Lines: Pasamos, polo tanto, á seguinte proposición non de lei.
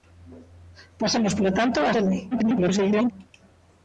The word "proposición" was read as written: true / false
false